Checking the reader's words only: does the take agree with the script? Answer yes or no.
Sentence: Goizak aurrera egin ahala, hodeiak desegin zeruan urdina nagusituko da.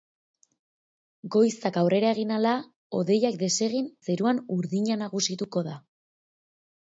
yes